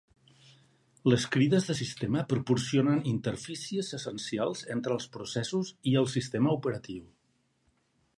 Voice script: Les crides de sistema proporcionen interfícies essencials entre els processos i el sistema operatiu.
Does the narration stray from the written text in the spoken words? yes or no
no